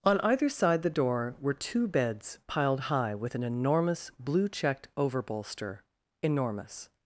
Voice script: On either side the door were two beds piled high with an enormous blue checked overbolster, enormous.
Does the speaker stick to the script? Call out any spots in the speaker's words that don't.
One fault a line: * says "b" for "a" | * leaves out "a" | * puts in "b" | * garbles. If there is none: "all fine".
all fine